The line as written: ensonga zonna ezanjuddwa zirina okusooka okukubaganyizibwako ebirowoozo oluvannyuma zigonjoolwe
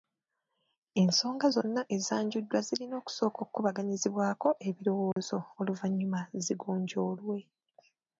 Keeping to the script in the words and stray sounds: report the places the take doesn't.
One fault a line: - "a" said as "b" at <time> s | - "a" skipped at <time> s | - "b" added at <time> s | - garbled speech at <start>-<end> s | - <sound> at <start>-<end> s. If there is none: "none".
- dropout at 5.1-5.2 s